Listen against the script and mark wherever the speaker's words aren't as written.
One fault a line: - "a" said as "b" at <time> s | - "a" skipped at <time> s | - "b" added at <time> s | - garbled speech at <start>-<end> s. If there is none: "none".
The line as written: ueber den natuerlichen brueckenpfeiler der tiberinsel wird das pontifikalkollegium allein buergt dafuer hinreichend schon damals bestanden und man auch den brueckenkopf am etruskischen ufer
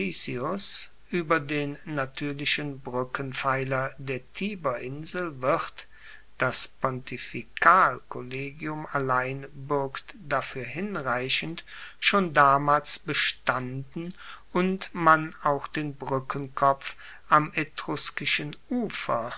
none